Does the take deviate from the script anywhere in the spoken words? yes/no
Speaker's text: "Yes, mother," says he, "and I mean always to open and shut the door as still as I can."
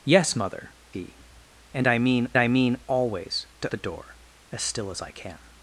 yes